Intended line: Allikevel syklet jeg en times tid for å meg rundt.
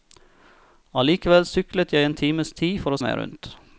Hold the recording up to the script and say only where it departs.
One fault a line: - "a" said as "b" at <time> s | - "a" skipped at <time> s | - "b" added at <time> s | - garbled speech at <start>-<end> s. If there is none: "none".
none